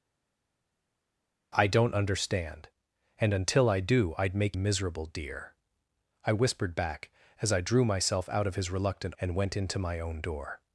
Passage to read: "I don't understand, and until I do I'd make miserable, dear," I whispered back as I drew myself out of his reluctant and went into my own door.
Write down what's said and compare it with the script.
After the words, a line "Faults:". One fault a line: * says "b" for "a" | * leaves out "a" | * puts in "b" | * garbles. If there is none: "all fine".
"I don't understand, and until I do I'd make miserable, dear," I whispered back as I drew myself out of his reluctant and went into my own door.
Faults:
all fine